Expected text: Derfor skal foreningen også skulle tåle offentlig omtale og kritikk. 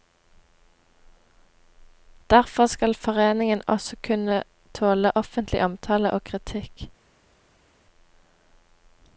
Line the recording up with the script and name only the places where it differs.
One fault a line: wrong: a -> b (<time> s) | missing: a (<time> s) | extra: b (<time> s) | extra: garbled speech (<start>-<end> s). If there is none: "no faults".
wrong: skulle -> kunne (4.1 s)